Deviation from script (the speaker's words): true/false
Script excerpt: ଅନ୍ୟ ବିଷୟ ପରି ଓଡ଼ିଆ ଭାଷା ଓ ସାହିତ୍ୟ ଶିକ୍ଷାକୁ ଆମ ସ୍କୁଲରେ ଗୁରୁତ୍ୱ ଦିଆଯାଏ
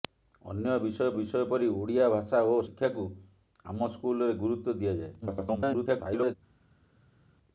true